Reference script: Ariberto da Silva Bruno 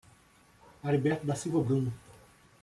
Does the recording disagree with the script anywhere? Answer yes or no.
no